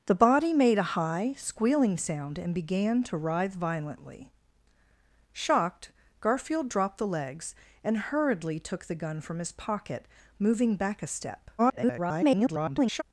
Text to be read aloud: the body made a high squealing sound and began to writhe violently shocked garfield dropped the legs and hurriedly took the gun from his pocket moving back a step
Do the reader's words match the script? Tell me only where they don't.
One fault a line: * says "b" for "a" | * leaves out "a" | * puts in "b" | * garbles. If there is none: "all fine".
* garbles